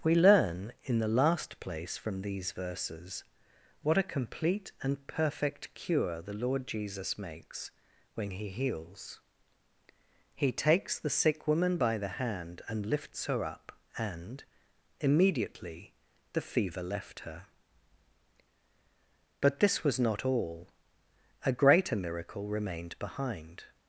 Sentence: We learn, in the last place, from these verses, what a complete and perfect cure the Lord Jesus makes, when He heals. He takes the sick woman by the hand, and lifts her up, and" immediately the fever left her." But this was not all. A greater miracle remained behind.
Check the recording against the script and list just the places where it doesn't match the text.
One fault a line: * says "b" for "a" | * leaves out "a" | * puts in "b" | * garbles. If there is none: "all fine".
all fine